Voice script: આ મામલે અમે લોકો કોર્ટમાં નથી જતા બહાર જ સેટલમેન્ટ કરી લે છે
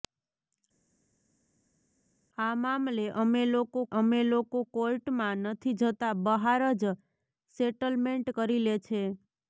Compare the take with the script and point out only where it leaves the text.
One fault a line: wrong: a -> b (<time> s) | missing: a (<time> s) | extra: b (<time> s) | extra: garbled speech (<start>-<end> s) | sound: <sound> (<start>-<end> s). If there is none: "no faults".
extra: અમે લોકો (4.0 s)